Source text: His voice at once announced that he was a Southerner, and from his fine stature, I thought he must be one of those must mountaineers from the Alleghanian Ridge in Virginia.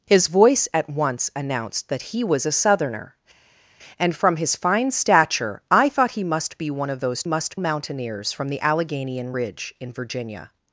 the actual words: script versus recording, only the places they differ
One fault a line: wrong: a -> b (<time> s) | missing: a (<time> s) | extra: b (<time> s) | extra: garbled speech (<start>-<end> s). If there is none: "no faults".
no faults